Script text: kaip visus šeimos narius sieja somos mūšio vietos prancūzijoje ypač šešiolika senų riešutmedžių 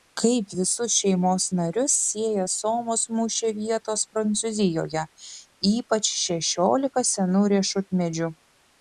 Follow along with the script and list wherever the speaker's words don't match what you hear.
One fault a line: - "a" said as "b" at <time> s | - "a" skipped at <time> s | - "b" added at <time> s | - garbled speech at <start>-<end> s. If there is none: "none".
none